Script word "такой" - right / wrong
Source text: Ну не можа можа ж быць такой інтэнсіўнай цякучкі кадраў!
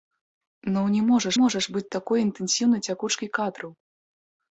right